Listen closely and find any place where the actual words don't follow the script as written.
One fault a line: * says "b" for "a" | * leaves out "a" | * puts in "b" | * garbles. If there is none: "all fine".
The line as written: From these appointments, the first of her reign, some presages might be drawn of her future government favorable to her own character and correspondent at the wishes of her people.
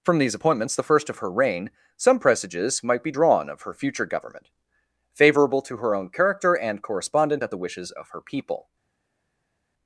all fine